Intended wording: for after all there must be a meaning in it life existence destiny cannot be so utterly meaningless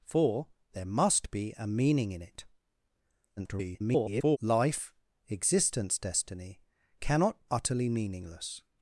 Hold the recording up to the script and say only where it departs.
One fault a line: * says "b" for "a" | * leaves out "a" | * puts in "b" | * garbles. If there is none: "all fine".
* leaves out "after all"
* garbles
* leaves out "be so"